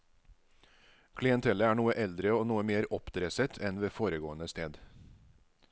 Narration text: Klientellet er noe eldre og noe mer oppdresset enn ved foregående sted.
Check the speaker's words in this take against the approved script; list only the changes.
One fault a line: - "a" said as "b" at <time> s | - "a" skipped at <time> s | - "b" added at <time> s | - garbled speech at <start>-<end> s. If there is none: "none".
none